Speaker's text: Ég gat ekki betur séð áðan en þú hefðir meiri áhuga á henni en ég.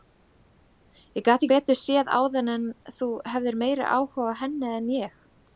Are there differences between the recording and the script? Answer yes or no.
yes